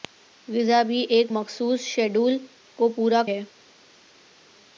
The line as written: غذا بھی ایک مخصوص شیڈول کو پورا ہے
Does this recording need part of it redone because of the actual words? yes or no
no